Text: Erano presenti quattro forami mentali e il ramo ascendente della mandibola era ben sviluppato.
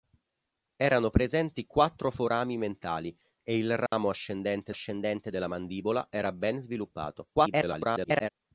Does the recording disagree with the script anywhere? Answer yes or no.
yes